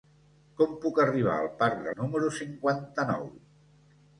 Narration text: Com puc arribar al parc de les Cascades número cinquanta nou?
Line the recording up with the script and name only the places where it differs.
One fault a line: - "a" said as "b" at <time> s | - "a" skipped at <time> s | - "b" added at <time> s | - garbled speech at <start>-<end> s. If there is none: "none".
- "les Cascades" skipped at 1.9 s